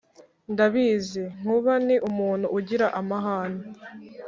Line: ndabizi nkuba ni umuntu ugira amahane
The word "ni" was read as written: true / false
true